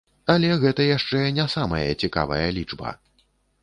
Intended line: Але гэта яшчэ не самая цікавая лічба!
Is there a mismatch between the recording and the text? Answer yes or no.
no